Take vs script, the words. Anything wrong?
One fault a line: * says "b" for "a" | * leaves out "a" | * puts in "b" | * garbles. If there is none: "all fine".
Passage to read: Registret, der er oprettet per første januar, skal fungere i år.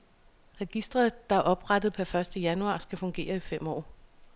* puts in "fem"